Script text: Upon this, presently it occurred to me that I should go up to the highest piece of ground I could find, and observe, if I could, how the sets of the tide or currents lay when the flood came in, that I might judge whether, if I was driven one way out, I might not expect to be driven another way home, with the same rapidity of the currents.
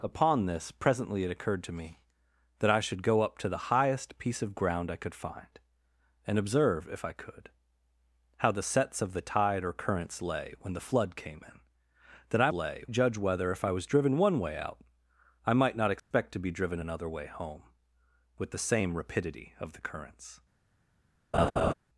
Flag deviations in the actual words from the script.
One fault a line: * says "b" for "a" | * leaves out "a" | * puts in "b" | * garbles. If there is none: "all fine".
* says "lay" for "might"